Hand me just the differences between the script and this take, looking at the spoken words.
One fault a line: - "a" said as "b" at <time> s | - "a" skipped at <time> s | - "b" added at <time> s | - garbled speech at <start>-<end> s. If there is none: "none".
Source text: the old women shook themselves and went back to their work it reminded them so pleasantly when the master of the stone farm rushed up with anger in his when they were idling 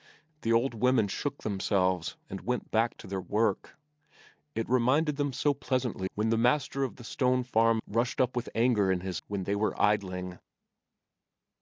none